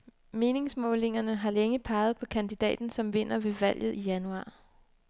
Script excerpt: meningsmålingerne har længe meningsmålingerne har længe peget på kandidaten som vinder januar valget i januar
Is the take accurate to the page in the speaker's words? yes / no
no